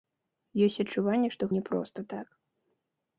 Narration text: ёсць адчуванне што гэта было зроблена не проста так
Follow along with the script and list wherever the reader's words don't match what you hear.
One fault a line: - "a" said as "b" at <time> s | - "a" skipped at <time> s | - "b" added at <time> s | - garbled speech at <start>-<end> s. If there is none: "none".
- "гэта было зроблена" skipped at 1.4 s